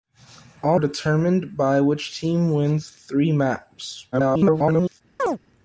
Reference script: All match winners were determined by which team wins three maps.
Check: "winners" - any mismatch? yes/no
yes